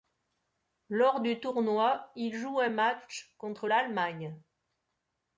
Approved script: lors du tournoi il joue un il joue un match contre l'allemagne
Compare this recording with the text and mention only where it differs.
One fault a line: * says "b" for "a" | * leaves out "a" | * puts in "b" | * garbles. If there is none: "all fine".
* leaves out "il joue un"